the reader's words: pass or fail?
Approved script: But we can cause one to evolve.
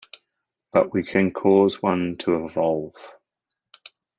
pass